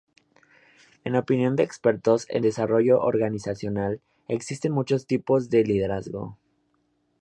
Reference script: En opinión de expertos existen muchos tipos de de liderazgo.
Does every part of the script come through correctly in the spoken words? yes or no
no